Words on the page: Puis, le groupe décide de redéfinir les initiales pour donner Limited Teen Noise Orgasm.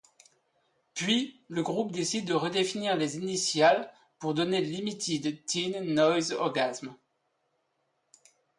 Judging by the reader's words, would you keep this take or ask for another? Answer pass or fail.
pass